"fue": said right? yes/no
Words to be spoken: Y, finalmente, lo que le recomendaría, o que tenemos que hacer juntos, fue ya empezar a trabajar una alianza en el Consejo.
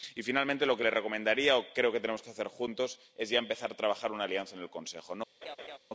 no